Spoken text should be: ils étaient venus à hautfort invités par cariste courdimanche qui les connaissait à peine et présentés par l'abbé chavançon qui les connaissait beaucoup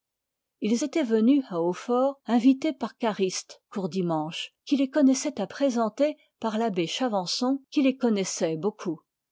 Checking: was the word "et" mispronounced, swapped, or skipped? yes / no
yes